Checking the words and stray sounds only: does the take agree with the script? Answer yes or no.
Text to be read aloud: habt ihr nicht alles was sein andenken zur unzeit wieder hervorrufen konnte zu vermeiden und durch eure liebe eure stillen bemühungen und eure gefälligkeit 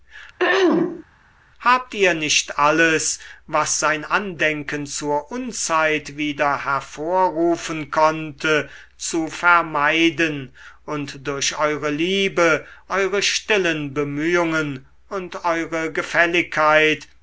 no